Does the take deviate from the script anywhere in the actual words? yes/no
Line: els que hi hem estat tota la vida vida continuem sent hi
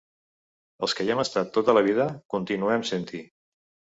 yes